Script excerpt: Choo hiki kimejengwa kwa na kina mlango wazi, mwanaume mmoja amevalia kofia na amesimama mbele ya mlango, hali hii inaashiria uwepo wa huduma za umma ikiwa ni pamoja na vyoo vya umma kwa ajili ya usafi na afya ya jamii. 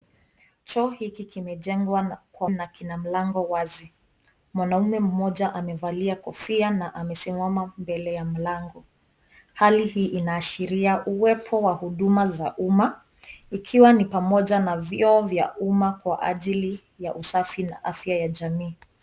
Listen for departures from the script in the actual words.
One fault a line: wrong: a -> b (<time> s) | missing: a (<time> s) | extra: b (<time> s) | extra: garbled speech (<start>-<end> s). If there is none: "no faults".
no faults